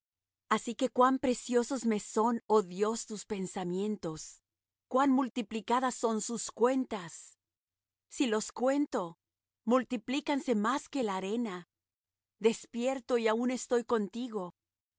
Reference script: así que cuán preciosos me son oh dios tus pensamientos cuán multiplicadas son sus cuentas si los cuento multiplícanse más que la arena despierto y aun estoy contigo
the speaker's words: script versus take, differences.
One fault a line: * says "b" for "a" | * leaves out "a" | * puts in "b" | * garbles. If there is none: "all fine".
all fine